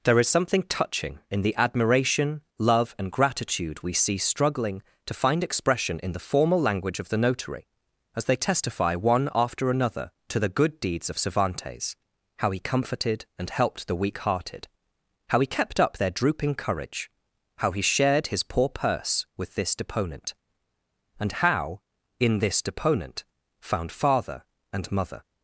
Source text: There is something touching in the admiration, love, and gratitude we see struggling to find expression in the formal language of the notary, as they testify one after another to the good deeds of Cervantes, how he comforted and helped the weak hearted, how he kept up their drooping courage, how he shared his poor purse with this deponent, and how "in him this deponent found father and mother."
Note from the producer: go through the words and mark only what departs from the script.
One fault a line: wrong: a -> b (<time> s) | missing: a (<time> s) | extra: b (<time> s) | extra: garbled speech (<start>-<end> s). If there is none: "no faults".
missing: him (22.4 s)